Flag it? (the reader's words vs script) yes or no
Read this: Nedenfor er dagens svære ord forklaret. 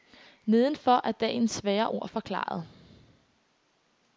no